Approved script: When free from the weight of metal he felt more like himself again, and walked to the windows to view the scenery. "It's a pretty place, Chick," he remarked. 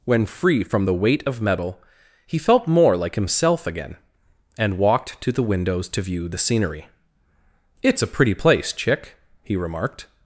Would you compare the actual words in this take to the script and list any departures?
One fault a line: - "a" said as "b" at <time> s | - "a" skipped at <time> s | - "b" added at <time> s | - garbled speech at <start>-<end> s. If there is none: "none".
none